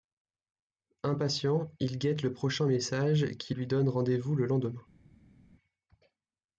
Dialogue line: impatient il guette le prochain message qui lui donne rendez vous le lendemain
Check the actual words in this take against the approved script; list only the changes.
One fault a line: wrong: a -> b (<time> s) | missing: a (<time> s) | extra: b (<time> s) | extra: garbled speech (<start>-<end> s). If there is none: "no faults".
no faults